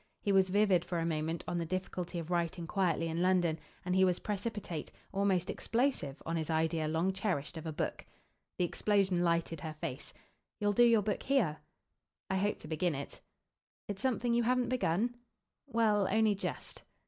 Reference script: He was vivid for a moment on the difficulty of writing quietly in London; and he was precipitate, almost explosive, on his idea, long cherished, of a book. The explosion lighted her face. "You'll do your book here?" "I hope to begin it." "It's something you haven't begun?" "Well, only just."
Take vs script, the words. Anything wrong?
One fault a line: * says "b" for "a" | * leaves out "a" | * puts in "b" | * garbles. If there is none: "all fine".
all fine